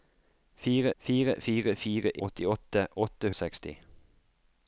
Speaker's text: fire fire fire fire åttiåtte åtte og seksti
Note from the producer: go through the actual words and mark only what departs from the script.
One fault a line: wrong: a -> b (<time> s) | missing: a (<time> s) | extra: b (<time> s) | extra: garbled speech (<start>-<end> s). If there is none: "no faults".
no faults